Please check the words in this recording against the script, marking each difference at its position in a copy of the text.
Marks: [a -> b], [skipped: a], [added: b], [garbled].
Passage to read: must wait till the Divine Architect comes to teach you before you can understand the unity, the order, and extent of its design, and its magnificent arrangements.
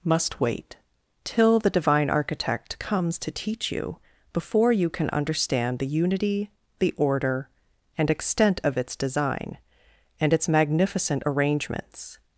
must wait till the Divine Architect comes to teach you before you can understand the unity, the order, and extent of its design, and its magnificent arrangements.